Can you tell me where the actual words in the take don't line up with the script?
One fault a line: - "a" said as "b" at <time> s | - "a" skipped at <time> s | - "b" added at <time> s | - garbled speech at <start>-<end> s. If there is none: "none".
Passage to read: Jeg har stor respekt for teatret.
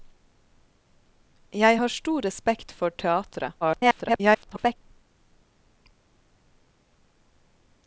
- garbled speech at 3.6-4.8 s